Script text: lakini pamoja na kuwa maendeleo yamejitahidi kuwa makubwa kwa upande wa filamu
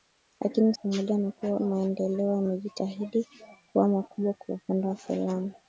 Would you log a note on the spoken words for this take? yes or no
no